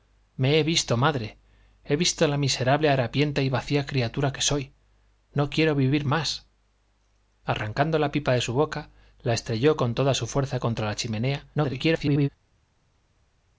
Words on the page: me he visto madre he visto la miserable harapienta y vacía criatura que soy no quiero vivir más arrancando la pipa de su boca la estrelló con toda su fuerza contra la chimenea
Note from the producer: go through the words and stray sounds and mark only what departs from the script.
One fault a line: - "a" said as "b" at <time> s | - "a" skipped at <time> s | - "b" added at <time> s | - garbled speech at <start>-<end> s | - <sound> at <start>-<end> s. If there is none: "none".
- garbled speech at 11.5-12.3 s